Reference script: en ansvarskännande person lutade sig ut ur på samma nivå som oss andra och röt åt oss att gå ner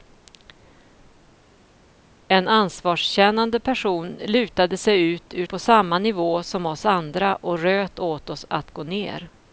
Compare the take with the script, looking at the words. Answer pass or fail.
pass